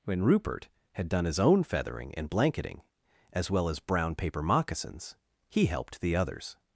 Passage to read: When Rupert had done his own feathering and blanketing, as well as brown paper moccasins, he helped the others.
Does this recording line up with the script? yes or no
yes